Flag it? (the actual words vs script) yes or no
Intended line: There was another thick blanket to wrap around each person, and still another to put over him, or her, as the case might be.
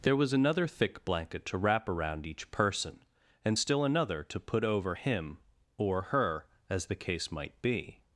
no